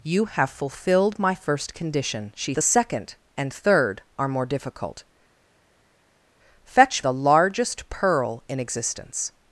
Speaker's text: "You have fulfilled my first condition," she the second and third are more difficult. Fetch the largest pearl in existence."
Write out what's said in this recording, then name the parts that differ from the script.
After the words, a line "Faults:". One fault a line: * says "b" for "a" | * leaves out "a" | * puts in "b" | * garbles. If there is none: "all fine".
"You have fulfilled my first condition," she the second and third are more difficult. Fetch the largest pearl in existence."
Faults:
all fine